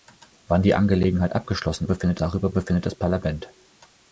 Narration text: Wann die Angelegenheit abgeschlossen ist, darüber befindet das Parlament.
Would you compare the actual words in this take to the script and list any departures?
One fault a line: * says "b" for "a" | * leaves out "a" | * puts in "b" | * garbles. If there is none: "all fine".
* says "befindet" for "ist"